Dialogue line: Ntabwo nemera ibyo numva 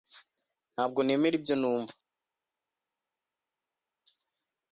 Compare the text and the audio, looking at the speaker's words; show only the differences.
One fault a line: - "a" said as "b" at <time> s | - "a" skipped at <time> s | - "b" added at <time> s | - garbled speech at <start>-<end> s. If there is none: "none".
none